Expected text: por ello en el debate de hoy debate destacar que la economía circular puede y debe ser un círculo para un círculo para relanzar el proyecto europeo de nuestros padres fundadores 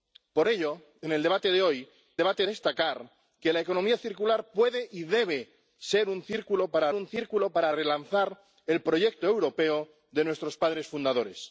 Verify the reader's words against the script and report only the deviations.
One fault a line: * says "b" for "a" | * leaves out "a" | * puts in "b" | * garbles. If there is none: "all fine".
all fine